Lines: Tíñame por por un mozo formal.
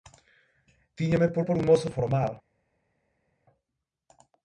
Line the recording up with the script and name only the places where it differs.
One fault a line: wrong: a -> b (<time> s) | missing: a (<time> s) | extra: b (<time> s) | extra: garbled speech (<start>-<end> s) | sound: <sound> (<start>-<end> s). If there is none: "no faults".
no faults